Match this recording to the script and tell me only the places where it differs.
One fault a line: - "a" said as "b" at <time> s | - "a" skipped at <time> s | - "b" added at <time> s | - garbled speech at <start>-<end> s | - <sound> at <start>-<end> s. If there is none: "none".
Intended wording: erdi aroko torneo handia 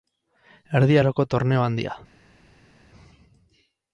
none